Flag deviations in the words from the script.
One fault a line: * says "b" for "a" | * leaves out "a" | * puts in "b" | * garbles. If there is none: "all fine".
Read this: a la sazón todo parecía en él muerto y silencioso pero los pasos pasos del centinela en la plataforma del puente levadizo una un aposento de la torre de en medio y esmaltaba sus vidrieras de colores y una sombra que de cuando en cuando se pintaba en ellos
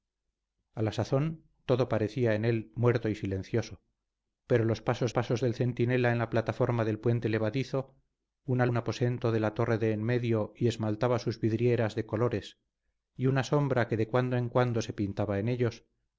all fine